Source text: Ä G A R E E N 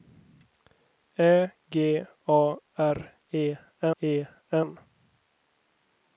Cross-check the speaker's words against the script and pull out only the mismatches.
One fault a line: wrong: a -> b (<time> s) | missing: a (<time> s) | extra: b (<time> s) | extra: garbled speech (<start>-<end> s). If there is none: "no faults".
no faults